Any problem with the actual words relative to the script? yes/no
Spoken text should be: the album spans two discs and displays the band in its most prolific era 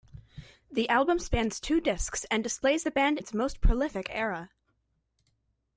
yes